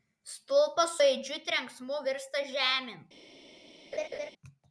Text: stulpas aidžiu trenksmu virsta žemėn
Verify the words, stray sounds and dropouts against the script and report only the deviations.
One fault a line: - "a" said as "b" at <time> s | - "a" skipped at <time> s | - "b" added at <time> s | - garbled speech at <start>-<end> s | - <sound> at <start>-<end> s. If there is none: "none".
- laugh at 3.9-4.3 s